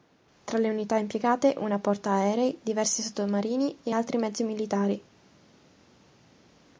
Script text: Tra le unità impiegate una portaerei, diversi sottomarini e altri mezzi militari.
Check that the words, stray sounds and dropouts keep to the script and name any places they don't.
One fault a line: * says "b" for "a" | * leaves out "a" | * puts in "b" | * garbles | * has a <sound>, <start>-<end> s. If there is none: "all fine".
all fine